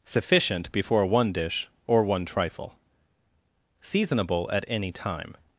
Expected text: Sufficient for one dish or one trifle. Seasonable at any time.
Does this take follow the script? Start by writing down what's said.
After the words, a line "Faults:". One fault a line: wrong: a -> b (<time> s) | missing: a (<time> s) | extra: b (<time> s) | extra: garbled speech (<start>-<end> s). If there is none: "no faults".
Sufficient before one dish or one trifle. Seasonable at any time.
Faults:
wrong: for -> before (0.7 s)